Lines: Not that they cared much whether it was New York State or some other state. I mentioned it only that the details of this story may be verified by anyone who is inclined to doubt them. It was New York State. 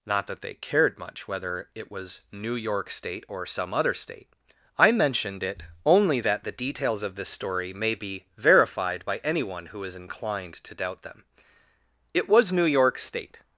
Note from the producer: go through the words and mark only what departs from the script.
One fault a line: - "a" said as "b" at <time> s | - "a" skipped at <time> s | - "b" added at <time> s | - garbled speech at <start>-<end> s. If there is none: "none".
none